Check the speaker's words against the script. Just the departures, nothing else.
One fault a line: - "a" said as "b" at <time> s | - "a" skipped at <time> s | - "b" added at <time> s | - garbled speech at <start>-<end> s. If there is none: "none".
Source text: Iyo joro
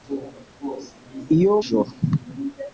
none